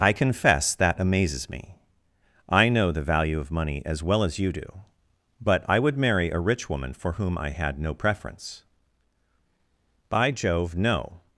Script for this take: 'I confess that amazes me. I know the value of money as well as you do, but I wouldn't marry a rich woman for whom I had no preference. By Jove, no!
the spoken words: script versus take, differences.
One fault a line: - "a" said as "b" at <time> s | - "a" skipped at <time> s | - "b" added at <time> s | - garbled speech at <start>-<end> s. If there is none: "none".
- "wouldn't" said as "would" at 5.8 s